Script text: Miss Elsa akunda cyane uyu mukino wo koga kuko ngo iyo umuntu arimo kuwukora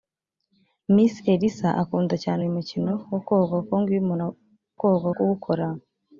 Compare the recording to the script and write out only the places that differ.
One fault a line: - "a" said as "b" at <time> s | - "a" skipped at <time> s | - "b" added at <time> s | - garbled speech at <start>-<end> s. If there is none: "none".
- "arimo" said as "koga" at 4.8 s